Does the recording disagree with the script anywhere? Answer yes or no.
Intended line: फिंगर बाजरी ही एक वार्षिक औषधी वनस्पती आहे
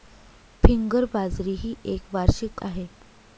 yes